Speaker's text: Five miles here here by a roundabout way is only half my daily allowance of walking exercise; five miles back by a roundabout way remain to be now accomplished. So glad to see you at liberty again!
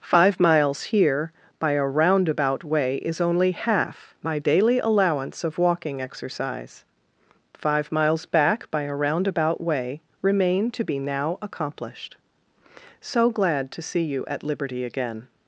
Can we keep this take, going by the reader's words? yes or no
no